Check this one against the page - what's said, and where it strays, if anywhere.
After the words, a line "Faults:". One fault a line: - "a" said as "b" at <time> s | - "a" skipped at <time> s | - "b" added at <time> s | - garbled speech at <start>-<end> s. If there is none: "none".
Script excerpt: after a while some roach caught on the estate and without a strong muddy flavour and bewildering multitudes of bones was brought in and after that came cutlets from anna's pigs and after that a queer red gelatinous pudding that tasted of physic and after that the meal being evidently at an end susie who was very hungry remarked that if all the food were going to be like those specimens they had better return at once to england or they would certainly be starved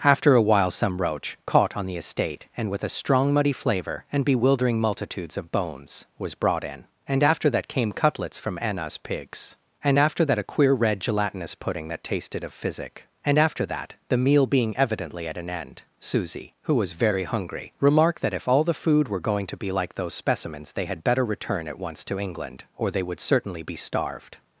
after a while some roach caught on the estate and with a strong muddy flavour and bewildering multitudes of bones was brought in and after that came cutlets from anna's pigs and after that a queer red gelatinous pudding that tasted of physic and after that the meal being evidently at an end susie who was very hungry remarked that if all the food were going to be like those specimens they had better return at once to england or they would certainly be starved
Faults:
- "without" said as "with" at 2.7 s